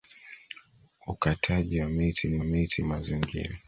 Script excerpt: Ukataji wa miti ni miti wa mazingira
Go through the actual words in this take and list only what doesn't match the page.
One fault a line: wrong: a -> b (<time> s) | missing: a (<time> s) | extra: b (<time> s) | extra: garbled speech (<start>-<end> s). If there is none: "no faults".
no faults